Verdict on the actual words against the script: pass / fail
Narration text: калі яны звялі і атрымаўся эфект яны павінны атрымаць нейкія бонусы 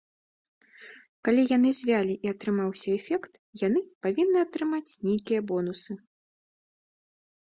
pass